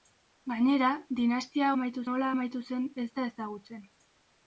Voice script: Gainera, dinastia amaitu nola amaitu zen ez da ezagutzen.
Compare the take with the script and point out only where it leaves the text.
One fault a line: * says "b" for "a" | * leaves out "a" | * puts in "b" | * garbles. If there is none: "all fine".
all fine